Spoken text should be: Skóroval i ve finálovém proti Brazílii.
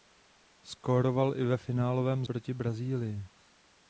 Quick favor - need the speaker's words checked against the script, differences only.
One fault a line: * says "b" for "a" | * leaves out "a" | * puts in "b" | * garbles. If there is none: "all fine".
all fine